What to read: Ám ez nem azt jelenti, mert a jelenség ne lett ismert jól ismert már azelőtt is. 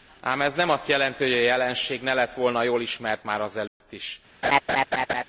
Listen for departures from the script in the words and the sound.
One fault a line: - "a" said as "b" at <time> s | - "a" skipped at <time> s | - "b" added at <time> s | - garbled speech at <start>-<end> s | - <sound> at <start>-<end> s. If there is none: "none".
- "mert" said as "hogy" at 1.2 s
- "ismert" said as "volna" at 2.3 s
- dropout at 3.7-3.8 s
- laugh at 4.4-5.2 s